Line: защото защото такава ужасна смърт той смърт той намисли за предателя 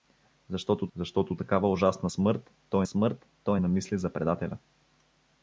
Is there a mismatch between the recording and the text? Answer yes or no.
no